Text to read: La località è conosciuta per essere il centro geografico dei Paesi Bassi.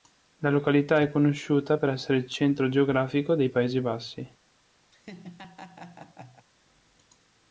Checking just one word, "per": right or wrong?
right